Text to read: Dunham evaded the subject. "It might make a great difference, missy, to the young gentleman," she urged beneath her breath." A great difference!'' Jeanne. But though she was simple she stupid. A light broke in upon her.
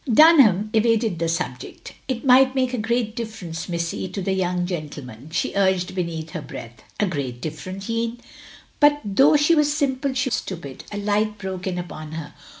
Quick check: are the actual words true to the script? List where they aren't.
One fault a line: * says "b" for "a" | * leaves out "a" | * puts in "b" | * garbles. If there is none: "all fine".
all fine